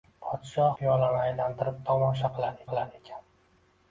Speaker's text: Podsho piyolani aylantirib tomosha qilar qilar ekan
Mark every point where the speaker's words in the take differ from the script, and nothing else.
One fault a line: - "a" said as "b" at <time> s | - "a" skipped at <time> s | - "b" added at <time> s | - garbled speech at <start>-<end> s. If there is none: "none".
none